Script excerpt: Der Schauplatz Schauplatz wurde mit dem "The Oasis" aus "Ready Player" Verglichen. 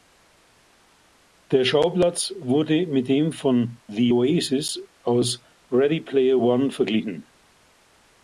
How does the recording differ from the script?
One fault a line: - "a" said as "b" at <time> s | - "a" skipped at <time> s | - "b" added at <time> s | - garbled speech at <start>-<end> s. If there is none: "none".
- "Schauplatz" skipped at 2.3 s
- "von" added at 3.3 s
- "One" added at 6.3 s